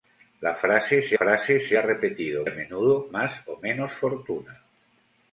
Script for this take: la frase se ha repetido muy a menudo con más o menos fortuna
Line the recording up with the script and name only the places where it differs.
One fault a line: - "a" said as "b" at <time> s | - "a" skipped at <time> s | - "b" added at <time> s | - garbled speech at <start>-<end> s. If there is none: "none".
- "frase se" added at 1.1 s
- "muy" skipped at 2.4 s
- "con" skipped at 3.1 s